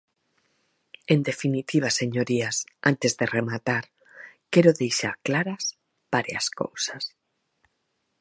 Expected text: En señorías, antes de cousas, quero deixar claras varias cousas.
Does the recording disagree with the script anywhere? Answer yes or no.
yes